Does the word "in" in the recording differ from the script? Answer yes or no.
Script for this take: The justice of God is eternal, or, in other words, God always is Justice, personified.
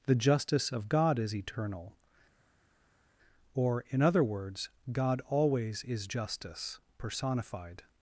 no